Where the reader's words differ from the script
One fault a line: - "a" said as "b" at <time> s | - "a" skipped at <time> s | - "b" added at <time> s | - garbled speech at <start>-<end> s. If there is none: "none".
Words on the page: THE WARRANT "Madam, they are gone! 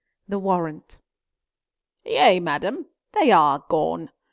- "Yea" added at 2.0 s